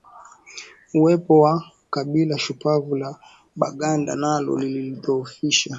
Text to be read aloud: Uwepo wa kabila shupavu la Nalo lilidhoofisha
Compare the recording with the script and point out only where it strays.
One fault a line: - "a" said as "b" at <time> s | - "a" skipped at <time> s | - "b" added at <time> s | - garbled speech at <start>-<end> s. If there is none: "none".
- "Baganda" added at 3.5 s